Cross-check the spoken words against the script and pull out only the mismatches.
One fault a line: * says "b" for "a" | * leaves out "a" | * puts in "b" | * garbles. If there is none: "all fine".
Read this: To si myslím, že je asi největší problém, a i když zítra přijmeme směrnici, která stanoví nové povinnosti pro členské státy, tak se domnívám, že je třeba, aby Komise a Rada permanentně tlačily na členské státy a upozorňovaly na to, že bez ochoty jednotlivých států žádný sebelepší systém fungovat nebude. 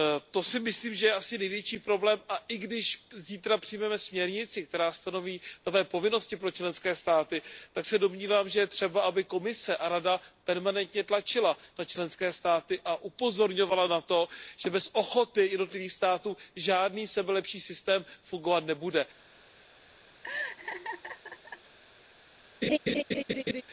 all fine